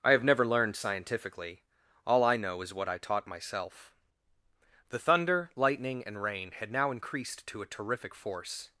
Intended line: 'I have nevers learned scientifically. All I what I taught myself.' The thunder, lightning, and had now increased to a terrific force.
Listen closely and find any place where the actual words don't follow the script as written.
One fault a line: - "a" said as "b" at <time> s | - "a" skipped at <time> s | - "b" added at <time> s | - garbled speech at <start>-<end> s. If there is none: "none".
- "nevers" said as "never" at 0.2 s
- "know is" added at 2.4 s
- "rain" added at 6.2 s